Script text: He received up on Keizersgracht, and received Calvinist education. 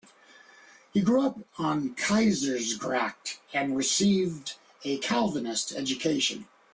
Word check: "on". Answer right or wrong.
right